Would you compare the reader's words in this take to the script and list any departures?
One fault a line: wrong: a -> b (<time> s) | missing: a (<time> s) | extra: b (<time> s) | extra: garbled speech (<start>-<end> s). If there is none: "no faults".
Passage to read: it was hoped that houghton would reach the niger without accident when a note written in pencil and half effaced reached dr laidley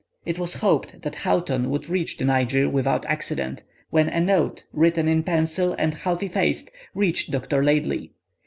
no faults